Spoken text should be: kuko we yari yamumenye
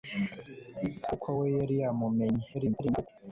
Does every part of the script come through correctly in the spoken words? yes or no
no